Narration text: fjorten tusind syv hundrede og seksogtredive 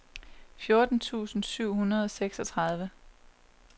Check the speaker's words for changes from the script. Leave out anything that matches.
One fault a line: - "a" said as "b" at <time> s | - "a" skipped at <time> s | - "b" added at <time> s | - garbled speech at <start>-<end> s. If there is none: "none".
none